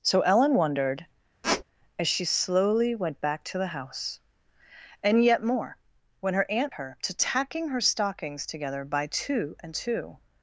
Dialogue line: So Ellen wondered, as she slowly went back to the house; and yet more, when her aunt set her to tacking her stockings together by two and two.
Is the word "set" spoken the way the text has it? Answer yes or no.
no